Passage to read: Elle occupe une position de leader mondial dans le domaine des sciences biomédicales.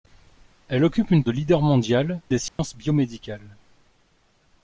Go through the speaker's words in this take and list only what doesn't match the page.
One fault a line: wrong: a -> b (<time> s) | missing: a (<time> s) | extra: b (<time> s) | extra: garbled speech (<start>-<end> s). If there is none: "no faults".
missing: position (1.2 s)
missing: dans le domaine (2.2 s)